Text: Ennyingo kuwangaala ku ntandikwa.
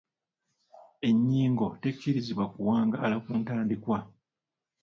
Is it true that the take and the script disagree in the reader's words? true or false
true